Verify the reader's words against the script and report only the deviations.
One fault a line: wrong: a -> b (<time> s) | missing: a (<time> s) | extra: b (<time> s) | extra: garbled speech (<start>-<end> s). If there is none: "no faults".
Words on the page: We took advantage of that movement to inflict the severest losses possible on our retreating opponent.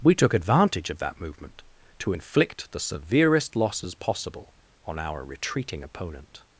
no faults